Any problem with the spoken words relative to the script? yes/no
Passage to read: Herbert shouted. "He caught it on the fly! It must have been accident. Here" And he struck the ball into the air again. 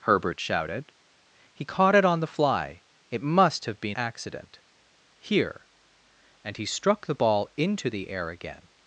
no